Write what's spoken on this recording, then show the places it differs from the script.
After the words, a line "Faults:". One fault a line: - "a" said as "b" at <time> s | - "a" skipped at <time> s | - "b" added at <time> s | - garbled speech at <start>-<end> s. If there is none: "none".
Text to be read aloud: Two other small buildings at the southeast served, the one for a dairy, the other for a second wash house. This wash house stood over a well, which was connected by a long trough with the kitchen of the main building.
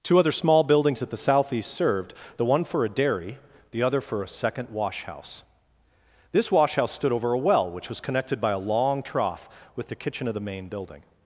Two other small buildings at the southeast served, the one for a dairy, the other for a second wash house. This wash house stood over a well, which was connected by a long trough with the kitchen of the main building.
Faults:
none